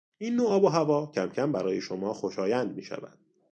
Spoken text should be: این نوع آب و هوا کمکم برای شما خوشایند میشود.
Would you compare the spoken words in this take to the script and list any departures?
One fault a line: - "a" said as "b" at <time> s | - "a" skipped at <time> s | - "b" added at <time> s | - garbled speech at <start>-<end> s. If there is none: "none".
none